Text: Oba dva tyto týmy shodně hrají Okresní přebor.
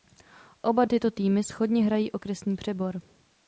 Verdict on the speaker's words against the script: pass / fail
fail